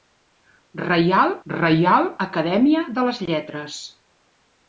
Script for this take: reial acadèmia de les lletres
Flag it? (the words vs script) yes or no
yes